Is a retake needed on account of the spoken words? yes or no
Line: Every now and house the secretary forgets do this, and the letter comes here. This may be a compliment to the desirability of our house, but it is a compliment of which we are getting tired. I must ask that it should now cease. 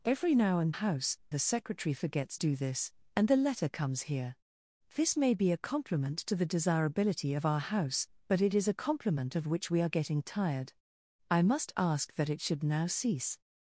no